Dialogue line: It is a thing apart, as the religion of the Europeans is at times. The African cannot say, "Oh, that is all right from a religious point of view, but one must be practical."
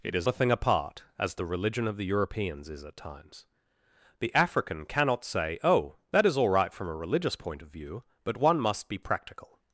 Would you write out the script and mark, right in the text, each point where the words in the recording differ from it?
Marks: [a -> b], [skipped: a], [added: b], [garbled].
It is a thing apart, as the religion of the Europeans is at times. The African cannot say, "Oh, that is all right from a religious point of view, but one must be practical."